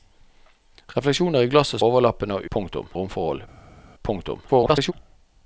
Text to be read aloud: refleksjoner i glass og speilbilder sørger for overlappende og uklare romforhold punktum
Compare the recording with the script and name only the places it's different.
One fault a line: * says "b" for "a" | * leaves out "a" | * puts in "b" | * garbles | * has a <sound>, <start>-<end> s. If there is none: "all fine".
* leaves out "speilbilder sørger for"
* says "punktum" for "uklare"
* garbles